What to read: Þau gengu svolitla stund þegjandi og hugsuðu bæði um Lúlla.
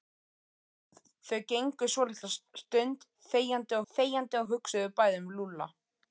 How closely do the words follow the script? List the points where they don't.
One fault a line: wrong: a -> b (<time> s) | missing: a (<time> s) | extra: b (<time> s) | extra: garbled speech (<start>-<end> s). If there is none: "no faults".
extra: þegjandi (3.9 s)